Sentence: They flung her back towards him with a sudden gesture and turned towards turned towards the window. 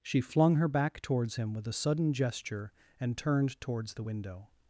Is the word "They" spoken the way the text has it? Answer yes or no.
no